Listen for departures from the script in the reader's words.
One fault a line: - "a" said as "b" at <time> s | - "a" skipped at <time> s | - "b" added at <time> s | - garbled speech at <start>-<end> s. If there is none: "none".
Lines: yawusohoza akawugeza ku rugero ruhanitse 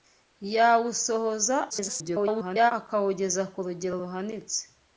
- garbled speech at 1.7-2.7 s